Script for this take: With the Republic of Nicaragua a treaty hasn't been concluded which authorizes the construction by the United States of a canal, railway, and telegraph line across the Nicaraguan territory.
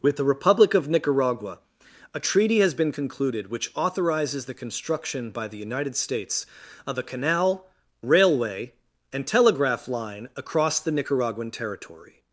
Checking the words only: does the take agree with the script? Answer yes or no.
no